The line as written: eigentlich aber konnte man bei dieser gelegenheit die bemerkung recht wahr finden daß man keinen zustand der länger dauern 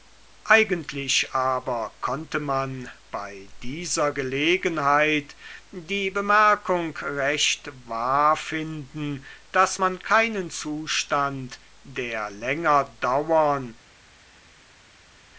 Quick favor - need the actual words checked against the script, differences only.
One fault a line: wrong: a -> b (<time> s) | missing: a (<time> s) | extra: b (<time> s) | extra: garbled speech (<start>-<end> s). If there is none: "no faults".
no faults